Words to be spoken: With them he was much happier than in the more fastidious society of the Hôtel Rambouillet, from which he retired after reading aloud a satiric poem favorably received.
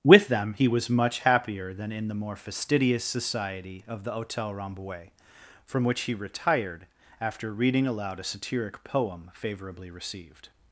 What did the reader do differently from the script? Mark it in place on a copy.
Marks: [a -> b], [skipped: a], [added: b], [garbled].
With them he was much happier than in the more fastidious society of the Hôtel Rambouillet, from which he retired after reading aloud a satiric poem favorably received.